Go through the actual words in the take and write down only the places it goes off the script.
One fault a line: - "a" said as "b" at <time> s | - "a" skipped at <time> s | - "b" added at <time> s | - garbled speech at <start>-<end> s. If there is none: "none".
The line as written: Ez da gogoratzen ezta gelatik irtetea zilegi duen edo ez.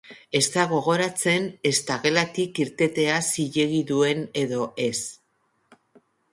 none